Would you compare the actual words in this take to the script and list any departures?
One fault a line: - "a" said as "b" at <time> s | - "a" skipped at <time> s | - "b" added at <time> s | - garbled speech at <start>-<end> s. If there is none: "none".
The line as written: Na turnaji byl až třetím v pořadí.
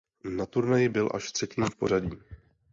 none